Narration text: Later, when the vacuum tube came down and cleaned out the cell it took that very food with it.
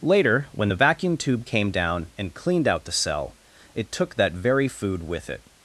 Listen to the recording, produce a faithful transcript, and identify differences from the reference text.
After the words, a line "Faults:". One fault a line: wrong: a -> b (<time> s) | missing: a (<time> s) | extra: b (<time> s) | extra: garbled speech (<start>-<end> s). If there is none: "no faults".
Later, when the vacuum tube came down and cleaned out the cell it took that very food with it.
Faults:
no faults